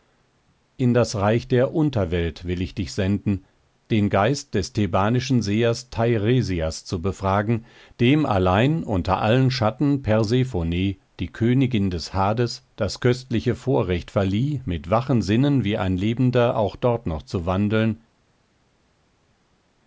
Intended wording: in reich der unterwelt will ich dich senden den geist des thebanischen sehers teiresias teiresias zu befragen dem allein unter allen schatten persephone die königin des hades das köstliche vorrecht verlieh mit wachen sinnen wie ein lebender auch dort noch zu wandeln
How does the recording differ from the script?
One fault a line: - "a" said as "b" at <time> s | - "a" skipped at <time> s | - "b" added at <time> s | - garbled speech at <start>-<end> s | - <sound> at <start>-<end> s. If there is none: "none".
- "das" added at 0.9 s
- "teiresias" skipped at 6.8 s